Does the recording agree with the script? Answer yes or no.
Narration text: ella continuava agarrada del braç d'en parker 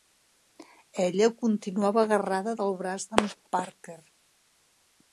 yes